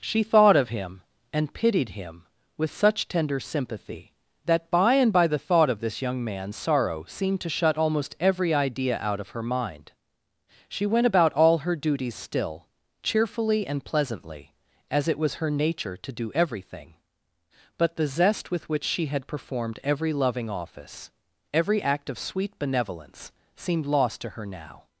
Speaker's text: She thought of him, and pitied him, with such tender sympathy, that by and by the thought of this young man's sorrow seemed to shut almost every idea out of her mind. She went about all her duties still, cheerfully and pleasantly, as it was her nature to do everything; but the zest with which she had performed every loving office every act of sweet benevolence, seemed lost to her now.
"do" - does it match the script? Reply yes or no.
yes